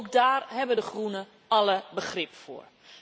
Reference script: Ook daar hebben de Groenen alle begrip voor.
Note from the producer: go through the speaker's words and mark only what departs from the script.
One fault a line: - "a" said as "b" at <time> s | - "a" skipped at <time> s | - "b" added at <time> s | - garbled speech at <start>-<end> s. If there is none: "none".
none